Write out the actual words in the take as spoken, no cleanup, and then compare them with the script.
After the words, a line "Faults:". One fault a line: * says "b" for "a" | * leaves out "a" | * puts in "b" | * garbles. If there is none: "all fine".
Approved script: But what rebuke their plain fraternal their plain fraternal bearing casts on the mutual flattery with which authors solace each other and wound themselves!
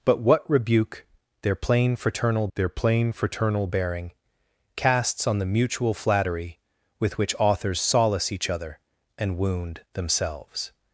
But what rebuke their plain fraternal their plain fraternal bearing casts on the mutual flattery with which authors solace each other and wound themselves!
Faults:
all fine